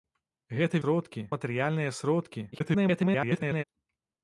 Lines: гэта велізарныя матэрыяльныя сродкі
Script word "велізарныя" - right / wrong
wrong